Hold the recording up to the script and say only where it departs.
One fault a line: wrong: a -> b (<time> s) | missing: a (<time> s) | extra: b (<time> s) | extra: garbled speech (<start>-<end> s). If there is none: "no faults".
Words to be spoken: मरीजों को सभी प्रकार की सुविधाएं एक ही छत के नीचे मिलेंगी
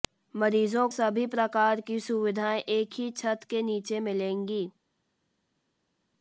missing: को (0.9 s)